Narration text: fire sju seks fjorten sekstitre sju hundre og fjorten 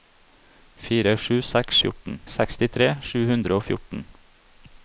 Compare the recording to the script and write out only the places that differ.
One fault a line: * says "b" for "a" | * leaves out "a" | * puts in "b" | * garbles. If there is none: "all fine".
all fine